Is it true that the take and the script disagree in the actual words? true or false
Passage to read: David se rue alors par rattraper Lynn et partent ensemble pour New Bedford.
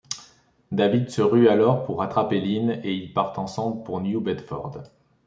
true